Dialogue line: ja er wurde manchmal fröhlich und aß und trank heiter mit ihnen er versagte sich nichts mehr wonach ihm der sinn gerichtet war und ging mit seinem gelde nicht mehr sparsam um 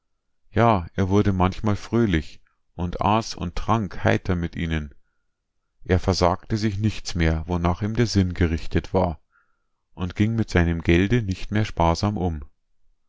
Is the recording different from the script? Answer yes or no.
no